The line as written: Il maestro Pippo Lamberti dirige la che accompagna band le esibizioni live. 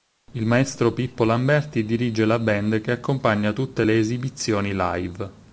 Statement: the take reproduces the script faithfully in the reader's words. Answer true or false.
false